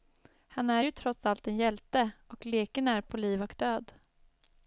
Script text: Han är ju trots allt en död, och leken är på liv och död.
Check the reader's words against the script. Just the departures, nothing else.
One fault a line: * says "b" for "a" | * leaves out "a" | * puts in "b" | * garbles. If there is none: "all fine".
* says "hjälte" for "död"